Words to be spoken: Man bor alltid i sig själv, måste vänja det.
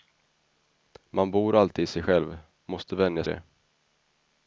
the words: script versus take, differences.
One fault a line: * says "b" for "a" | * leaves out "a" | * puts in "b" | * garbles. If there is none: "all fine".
all fine